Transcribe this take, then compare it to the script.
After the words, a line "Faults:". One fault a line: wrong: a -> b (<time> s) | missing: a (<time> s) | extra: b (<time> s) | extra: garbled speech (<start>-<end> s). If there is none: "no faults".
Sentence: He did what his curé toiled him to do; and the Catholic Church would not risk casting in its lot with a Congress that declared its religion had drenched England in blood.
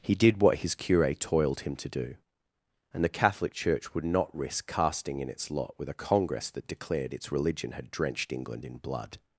He did what his curé toiled him to do; and the Catholic Church would not risk casting in its lot with a Congress that declared its religion had drenched England in blood.
Faults:
no faults